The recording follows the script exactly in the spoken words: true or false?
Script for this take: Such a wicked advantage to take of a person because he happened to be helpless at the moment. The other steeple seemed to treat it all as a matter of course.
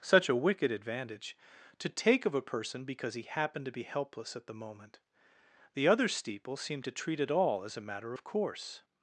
true